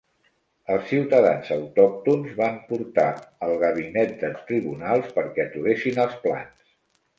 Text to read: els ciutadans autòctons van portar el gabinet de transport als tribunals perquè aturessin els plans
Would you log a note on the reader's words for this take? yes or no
yes